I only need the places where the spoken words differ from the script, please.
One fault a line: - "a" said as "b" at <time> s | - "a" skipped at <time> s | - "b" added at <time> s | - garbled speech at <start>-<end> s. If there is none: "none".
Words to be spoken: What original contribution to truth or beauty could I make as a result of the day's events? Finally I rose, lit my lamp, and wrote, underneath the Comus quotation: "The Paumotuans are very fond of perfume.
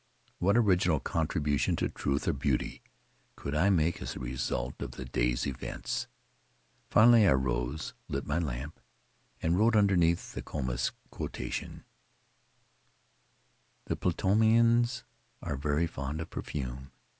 none